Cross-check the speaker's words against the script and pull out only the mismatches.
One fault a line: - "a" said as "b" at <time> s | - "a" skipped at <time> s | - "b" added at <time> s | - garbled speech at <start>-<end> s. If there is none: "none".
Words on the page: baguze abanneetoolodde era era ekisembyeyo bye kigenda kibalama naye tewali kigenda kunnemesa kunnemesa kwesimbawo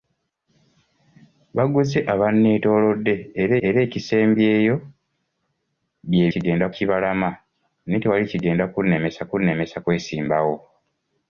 none